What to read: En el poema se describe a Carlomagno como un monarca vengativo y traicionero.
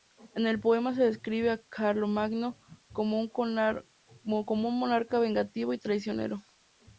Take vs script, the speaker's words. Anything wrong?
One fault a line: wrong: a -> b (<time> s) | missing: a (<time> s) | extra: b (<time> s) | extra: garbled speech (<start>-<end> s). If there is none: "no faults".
no faults